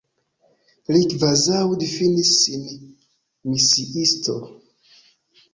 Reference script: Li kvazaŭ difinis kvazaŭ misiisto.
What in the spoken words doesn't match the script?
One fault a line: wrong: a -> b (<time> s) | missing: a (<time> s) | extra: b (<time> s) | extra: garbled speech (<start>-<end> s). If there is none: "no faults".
wrong: kvazaŭ -> sin (2.4 s)